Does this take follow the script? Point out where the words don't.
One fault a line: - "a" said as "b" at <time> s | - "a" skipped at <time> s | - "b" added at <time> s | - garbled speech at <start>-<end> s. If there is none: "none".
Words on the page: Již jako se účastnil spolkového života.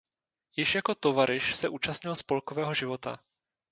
- "tovaryš" added at 1.0 s